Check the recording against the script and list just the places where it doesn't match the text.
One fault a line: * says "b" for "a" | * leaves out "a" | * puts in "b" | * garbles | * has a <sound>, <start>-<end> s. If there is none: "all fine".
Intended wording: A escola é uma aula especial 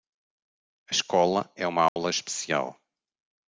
* has a dropout, 1.9-2.0 s